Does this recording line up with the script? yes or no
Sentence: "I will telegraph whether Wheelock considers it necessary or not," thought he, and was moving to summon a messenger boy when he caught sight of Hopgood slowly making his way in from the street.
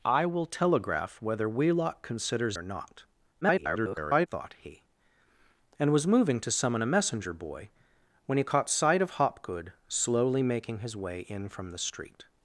no